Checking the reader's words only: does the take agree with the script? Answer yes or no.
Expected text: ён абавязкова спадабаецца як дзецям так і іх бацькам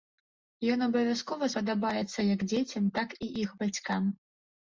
yes